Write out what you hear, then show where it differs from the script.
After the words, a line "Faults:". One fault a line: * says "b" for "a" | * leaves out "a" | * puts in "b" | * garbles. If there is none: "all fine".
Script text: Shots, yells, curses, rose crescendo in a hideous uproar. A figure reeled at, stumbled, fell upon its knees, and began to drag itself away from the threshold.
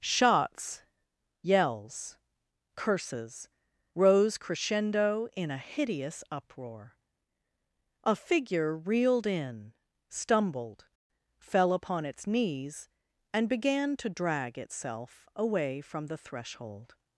Shots, yells, curses, rose crescendo in a hideous uproar. A figure reeled in, stumbled, fell upon its knees, and began to drag itself away from the threshold.
Faults:
* says "in" for "at"